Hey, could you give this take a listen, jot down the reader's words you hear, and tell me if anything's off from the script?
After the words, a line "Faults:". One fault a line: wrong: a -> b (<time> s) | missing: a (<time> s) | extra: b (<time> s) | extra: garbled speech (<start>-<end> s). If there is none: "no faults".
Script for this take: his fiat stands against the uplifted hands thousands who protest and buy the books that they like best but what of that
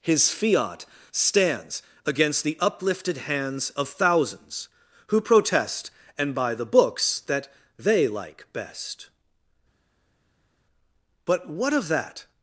his fiat stands against the uplifted hands of thousands who protest and buy the books that they like best but what of that
Faults:
extra: of (3.7 s)